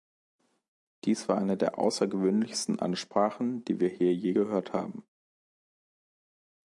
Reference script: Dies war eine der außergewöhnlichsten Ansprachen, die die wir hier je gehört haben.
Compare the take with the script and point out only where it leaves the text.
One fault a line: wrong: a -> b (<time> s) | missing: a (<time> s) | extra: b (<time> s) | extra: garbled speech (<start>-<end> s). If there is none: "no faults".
missing: die (3.8 s)